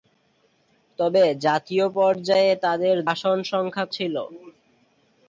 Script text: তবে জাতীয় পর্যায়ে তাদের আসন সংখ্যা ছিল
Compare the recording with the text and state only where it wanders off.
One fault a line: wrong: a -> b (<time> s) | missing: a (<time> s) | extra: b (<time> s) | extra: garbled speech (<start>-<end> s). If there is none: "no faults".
no faults